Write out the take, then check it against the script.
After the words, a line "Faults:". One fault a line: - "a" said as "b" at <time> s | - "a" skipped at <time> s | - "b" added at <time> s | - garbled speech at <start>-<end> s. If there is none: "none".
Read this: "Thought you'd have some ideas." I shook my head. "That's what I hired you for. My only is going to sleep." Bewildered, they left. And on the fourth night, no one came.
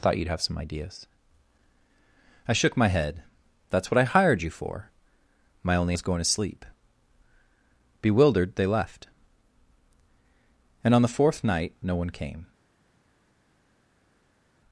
"Thought you'd have some ideas." I shook my head. "That's what I hired you for. My only is going to sleep." Bewildered, they left. And on the fourth night, no one came.
Faults:
none